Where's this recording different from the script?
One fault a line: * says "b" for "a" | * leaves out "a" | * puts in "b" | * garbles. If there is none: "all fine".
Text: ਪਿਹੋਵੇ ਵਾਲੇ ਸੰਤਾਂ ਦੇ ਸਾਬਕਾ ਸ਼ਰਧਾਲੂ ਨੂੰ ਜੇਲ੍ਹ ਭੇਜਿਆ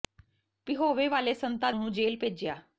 * leaves out "ਦੇ ਸਾਬਕਾ ਸ਼ਰਧਾਲੂ"